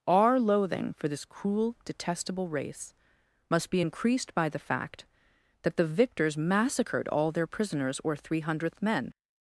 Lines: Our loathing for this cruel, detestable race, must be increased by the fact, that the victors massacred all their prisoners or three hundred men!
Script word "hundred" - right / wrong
wrong